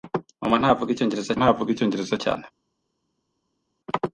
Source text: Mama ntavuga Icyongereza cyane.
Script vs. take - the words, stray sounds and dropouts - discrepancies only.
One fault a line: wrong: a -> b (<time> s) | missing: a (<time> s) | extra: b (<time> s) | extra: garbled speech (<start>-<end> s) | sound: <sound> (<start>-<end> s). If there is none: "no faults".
extra: ntavuga Icyongereza (1.4 s)